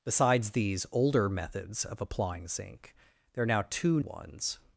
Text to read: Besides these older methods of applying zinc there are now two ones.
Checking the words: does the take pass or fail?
pass